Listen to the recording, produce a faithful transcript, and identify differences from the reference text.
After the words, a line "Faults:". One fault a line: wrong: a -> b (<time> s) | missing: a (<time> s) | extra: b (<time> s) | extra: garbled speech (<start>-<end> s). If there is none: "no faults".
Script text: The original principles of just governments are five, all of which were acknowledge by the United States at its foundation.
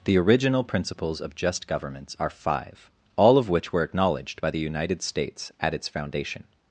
The original principles of just governments are five, all of which were acknowledged by the United States at its foundation.
Faults:
wrong: acknowledge -> acknowledged (3.8 s)